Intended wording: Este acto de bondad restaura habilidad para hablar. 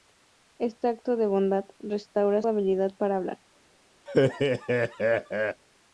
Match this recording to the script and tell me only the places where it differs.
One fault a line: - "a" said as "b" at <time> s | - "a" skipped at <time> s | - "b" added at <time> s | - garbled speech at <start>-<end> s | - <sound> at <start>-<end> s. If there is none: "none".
- laugh at 4.1-5.6 s